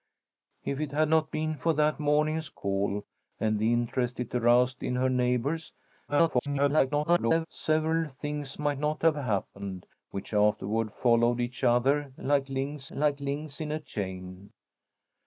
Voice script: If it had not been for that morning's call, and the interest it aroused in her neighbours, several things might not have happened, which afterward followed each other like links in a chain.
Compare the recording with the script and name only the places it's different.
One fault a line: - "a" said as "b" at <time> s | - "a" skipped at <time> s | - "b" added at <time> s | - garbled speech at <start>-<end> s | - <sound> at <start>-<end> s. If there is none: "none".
- garbled speech at 6.1-7.5 s
- "like links" added at 12.9 s